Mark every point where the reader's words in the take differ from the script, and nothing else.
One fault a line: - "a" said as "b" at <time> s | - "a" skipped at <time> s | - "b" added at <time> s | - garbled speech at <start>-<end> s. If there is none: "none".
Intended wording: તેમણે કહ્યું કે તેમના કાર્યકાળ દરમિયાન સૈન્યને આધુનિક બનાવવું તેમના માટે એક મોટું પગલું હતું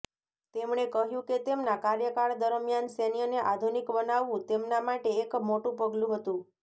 none